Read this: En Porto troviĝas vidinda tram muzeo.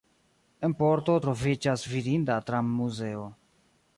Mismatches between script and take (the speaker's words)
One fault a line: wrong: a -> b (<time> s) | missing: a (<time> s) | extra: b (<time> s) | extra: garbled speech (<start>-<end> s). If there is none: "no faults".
no faults